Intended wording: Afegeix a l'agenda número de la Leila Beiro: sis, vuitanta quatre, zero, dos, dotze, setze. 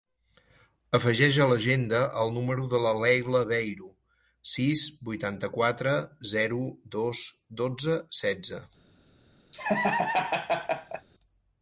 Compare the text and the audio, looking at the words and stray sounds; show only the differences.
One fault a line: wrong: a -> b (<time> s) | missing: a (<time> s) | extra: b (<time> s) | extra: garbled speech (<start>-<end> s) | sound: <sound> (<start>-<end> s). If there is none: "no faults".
extra: el (2.2 s)
sound: laugh (9.5-11.1 s)